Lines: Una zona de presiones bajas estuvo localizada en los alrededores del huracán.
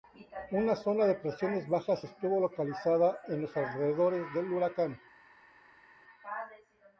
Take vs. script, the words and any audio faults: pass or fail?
pass